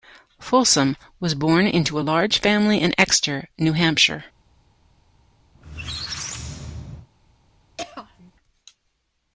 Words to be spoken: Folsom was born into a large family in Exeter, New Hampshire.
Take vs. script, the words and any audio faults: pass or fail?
fail